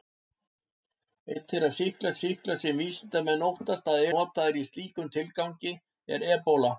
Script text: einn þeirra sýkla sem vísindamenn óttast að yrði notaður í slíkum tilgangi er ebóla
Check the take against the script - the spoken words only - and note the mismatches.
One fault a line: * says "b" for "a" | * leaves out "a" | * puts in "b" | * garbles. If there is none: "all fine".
* puts in "sýkla"
* leaves out "yrði"